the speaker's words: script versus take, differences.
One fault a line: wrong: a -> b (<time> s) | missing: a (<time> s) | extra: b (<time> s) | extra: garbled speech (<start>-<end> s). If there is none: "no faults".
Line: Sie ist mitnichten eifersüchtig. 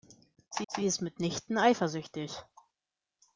extra: sie (0.7 s)